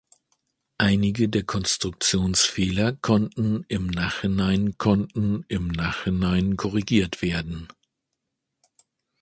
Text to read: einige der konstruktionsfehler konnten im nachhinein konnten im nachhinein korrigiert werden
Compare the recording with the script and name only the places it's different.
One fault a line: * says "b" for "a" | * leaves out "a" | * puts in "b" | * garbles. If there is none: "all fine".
all fine